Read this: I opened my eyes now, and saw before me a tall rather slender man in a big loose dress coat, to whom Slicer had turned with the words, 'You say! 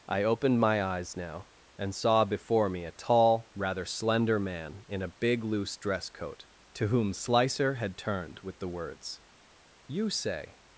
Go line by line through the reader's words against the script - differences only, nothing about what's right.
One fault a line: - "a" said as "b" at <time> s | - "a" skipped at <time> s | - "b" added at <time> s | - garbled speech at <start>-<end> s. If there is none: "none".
none